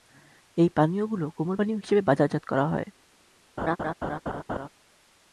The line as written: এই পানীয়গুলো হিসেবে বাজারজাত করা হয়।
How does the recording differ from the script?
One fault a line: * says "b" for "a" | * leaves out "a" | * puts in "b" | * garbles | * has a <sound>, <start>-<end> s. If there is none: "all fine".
* puts in "কোমল পানীয়"
* has a laugh, 3.6-4.7 s